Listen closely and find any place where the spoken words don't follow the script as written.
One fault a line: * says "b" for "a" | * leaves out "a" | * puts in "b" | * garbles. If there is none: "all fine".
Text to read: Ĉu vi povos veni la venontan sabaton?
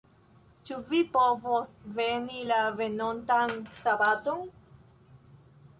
all fine